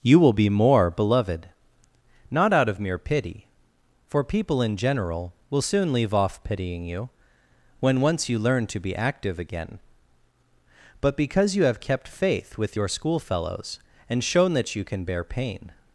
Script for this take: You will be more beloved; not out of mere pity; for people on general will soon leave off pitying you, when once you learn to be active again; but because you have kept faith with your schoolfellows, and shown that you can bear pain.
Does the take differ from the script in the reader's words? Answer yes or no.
yes